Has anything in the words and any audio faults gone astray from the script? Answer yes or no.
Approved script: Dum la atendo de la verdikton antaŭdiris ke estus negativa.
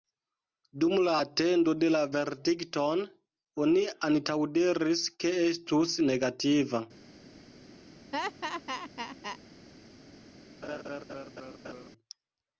yes